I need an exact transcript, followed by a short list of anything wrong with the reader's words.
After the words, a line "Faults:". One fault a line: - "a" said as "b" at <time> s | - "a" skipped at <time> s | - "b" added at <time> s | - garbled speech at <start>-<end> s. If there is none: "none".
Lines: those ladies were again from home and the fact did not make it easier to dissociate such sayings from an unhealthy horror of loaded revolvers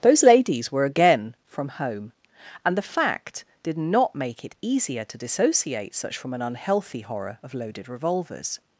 those ladies were again from home and the fact did not make it easier to dissociate such from an unhealthy horror of loaded revolvers
Faults:
- "sayings" skipped at 6.2 s